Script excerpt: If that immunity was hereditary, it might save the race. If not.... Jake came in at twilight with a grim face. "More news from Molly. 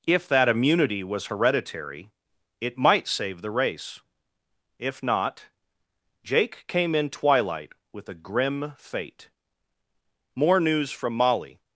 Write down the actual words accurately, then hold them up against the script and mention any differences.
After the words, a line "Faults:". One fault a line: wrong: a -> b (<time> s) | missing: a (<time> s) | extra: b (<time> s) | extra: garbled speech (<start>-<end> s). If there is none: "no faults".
If that immunity was hereditary, it might save the race. If not.... Jake came in twilight with a grim fate. "More news from Molly.
Faults:
missing: at (7.1 s)
wrong: face -> fate (8.8 s)